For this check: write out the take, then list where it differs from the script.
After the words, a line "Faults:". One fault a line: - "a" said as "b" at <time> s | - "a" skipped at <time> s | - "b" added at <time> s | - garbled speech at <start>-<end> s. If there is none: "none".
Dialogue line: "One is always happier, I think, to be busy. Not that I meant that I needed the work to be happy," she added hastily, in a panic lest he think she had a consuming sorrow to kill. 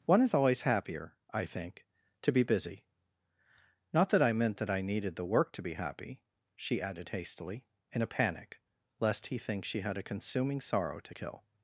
"One is always happier, I think, to be busy. Not that I meant that I needed the work to be happy," she added hastily, in a panic lest he think she had a consuming sorrow to kill.
Faults:
none